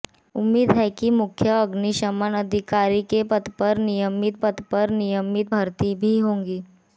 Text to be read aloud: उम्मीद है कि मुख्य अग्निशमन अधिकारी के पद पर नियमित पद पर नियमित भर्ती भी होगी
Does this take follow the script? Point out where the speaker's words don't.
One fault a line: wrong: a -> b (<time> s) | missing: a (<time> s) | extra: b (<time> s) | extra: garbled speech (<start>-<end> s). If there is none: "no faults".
no faults